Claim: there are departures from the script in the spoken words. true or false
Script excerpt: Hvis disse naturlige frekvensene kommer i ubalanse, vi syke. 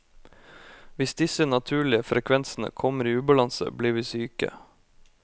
true